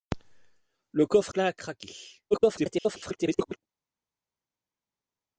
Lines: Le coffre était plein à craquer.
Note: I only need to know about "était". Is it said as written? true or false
false